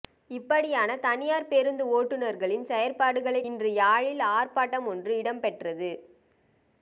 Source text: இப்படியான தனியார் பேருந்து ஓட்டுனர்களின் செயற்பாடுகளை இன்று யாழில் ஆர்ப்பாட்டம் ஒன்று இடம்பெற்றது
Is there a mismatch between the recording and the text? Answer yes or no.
no